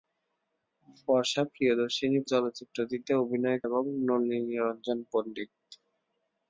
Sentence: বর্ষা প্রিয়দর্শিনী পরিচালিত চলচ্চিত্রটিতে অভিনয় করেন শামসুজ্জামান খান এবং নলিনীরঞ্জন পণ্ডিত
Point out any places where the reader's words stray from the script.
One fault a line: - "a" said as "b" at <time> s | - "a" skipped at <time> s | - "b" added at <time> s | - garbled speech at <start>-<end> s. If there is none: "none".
- "পরিচালিত" skipped at 2.2 s
- "করেন শামসুজ্জামান খান" skipped at 3.6 s